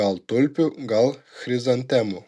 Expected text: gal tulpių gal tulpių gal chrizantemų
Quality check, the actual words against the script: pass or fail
fail